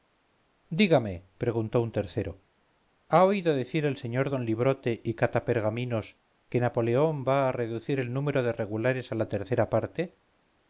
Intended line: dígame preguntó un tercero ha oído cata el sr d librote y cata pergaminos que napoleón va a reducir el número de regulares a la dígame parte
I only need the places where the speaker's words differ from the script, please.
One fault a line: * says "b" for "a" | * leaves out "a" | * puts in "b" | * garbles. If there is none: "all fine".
* says "decir" for "cata"
* says "tercera" for "dígame"